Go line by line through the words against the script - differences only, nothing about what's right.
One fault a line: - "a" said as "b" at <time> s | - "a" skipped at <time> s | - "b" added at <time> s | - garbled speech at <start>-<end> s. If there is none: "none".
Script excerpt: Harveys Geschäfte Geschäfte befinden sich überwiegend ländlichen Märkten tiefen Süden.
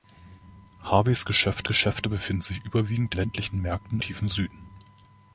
none